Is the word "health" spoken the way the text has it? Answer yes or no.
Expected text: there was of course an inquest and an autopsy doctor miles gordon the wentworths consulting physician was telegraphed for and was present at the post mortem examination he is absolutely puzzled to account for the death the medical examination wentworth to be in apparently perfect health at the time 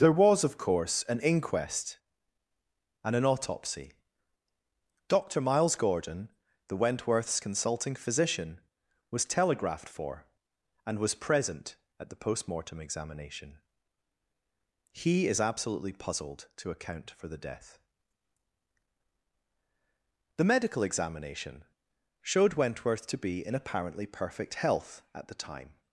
yes